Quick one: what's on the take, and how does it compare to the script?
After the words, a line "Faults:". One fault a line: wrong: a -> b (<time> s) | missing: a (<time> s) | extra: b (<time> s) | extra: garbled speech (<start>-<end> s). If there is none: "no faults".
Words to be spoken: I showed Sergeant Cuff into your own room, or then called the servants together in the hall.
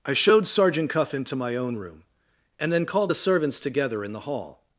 I showed Sergeant Cuff into my own room, and then called the servants together in the hall.
Faults:
wrong: your -> my (1.4 s)
wrong: or -> and (2.6 s)